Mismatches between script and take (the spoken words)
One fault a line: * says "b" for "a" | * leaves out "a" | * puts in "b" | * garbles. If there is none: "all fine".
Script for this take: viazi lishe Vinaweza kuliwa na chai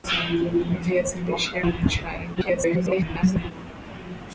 * leaves out "Vinaweza kuliwa"
* garbles